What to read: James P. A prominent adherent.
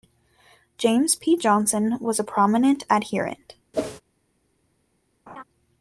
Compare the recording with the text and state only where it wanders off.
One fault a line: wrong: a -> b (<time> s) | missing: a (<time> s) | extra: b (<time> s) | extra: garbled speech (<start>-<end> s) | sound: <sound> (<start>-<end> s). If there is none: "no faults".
extra: Johnson was (1.3 s)
sound: whoosh (3.7-4.0 s)
sound: laugh (5.3-5.4 s)